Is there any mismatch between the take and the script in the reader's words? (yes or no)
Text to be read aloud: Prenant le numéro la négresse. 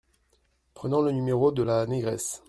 yes